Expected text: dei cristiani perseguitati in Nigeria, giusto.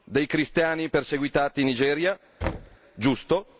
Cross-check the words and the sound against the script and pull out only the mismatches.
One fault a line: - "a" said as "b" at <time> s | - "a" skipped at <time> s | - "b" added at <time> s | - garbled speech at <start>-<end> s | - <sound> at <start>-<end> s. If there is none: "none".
- thud at 2.4-2.8 s